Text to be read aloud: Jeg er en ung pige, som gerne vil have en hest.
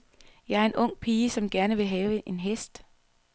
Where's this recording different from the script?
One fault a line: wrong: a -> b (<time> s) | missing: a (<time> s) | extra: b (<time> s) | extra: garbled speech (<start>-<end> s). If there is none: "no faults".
no faults